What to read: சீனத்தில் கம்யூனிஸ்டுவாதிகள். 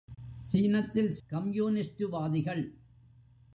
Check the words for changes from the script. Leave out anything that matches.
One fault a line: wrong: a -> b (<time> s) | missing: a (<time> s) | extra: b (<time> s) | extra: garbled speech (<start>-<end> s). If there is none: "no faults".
no faults